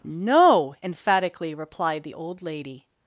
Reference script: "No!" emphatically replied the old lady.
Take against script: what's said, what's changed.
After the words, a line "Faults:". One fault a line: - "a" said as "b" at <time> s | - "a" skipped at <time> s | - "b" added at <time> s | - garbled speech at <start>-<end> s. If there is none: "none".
"No!" emphatically replied the old lady.
Faults:
none